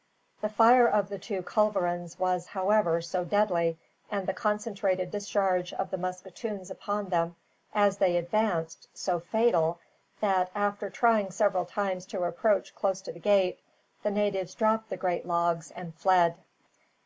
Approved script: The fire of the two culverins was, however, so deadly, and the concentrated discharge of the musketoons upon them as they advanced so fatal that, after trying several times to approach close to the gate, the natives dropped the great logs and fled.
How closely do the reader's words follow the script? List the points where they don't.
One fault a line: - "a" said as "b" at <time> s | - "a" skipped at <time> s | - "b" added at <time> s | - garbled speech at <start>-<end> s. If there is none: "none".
none